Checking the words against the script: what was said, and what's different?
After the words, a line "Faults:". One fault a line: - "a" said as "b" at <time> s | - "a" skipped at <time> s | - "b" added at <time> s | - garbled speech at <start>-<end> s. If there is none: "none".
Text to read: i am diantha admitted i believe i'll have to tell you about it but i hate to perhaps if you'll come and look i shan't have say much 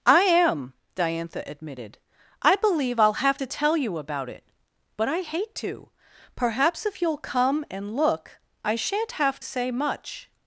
i am diantha admitted i believe i'll have to tell you about it but i hate to perhaps if you'll come and look i shan't have say much
Faults:
none